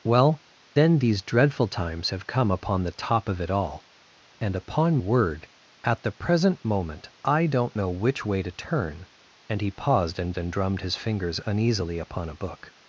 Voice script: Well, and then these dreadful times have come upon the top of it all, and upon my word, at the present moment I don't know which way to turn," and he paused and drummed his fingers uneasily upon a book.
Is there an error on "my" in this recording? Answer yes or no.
yes